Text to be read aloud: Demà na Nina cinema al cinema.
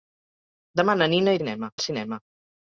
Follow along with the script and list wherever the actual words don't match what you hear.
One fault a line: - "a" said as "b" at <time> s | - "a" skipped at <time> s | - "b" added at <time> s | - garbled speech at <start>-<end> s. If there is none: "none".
none